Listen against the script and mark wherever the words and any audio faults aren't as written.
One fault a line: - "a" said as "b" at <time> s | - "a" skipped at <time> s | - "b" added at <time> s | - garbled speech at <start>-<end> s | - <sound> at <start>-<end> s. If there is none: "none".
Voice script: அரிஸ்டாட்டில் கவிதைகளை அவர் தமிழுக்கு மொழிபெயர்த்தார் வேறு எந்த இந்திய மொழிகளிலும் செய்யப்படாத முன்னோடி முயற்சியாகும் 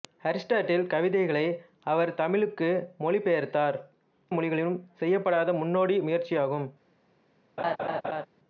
- "வேறு எந்த இந்திய" skipped at 3.8 s
- laugh at 7.6-8.3 s